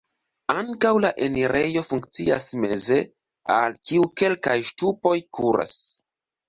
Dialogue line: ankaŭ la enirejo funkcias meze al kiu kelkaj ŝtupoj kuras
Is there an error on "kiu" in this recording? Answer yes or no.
no